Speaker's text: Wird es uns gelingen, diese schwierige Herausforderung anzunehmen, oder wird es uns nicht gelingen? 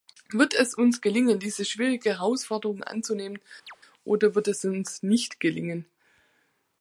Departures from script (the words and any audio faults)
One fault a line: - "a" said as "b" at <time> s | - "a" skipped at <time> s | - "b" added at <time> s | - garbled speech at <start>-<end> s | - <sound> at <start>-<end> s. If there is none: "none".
- chirp at 3.7-3.8 s